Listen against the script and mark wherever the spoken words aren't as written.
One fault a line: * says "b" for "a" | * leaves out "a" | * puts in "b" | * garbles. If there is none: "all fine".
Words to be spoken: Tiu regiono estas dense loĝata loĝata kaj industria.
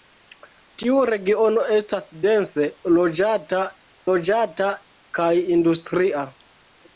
all fine